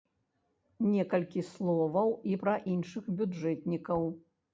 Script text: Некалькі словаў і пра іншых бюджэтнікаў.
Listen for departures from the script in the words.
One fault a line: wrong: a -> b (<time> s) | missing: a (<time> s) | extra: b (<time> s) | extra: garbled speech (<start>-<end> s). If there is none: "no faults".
no faults